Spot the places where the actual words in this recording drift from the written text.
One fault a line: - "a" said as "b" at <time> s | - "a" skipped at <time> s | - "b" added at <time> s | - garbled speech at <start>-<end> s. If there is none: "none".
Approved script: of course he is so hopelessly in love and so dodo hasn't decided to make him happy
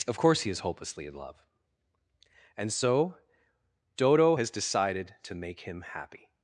- "so" skipped at 0.6 s
- "hasn't" said as "has" at 4.3 s